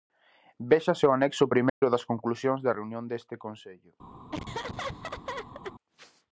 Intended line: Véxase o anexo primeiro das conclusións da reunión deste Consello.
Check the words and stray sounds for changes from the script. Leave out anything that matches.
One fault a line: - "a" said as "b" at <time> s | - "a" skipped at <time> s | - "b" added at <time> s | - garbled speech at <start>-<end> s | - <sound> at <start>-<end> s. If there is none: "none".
- dropout at 1.7-1.8 s
- laugh at 4.3-5.7 s